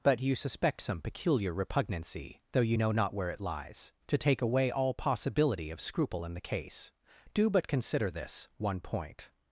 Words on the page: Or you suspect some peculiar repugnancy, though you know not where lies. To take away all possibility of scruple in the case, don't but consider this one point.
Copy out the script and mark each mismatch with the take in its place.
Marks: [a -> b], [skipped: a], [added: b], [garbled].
[Or -> But] you suspect some peculiar repugnancy, though you know not where [added: it] lies. To take away all possibility of scruple in the case, [don't -> do] but consider this one point.